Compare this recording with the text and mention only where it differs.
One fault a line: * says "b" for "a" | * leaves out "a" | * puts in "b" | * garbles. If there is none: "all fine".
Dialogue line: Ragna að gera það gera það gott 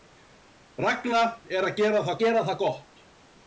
all fine